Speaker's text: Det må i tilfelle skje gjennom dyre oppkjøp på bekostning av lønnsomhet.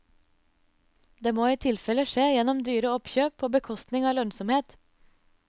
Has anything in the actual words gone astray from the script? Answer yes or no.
no